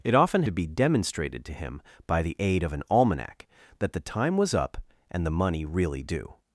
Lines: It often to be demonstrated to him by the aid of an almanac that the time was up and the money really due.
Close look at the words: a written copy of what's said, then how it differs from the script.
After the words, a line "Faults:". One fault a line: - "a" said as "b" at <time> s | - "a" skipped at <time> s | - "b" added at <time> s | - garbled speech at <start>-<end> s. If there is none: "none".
It often to be demonstrated to him by the aid of an almanac that the time was up and the money really due.
Faults:
none